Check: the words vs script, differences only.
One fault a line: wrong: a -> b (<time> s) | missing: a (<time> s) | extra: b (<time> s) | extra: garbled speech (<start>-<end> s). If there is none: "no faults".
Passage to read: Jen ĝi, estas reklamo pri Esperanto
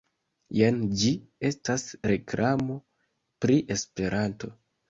no faults